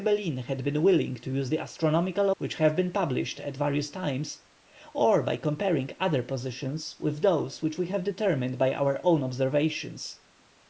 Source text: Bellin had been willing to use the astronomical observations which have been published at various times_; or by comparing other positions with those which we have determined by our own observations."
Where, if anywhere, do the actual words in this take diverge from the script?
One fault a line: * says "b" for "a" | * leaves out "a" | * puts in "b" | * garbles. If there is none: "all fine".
* leaves out "observations"